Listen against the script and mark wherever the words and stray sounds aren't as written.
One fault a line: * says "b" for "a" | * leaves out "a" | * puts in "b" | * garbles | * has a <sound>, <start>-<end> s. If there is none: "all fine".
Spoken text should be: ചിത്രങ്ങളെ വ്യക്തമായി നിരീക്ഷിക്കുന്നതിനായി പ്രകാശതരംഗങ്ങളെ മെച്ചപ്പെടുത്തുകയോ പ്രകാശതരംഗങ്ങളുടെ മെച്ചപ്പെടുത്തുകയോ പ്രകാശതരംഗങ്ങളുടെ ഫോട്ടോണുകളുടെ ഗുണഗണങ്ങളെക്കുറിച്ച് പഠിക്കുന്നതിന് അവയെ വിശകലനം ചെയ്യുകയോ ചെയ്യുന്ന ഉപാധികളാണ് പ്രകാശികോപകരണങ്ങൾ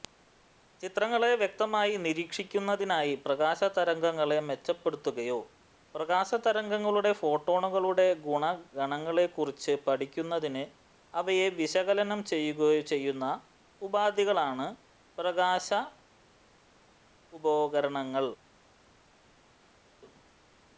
* leaves out "മെച്ചപ്പെടുത്തുകയോ പ്രകാശതരംഗങ്ങളുടെ"